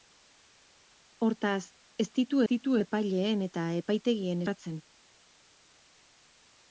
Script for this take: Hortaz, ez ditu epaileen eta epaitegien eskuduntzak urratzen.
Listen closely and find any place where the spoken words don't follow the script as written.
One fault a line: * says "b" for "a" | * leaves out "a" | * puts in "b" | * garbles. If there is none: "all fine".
* puts in "ditu"
* leaves out "eskuduntzak"